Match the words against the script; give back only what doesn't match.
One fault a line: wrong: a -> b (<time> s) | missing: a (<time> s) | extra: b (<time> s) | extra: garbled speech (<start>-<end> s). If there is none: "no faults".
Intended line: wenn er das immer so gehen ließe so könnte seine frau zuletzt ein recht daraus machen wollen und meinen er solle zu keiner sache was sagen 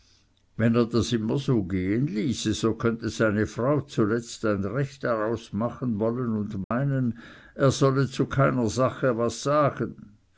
no faults